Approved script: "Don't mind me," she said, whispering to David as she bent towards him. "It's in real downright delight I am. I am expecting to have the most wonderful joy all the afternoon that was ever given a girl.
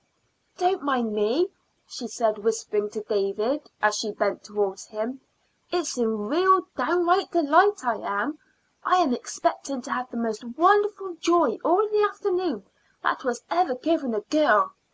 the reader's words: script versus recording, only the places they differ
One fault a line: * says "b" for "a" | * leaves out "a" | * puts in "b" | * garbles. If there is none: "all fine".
all fine